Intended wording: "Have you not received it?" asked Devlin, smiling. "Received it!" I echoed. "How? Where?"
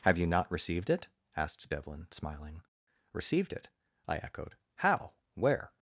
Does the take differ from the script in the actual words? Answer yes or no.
no